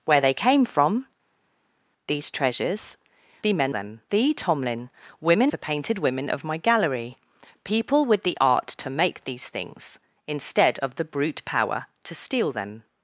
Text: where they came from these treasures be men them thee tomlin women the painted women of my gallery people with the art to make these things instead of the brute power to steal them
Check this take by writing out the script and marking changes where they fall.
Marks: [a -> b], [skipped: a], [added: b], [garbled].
where they came from these treasures be men them thee tomlin women the painted women of my gallery people with the art to make these things instead of the brute power to steal them